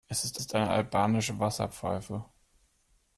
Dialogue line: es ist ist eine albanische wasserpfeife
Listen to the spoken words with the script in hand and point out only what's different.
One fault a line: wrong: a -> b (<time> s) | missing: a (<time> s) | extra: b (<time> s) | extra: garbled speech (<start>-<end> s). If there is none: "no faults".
no faults